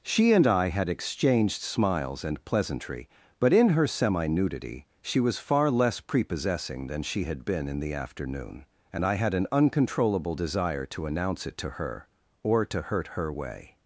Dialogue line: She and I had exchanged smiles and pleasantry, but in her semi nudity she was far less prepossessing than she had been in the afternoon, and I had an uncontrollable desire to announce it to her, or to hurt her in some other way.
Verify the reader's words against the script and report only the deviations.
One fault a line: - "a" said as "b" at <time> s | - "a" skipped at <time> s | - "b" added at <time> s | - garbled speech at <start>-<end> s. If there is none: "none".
- "in some other" skipped at 13.3 s